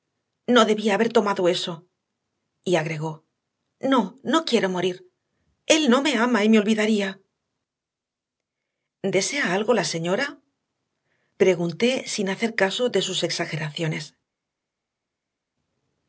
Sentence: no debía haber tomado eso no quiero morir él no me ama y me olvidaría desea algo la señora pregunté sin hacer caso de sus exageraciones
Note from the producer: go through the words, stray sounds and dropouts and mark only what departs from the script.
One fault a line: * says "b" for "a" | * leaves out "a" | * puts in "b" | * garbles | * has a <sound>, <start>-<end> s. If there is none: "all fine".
* puts in "y agregó no"